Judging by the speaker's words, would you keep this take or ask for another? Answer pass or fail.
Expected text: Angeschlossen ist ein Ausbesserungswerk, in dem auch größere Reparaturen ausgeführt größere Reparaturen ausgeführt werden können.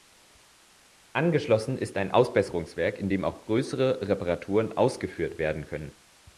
fail